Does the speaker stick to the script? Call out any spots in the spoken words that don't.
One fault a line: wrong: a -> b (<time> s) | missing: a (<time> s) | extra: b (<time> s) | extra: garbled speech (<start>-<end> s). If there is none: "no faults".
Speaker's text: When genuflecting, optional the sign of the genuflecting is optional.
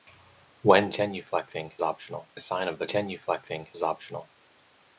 no faults